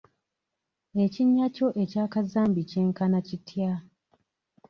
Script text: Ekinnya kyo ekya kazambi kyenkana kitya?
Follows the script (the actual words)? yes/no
yes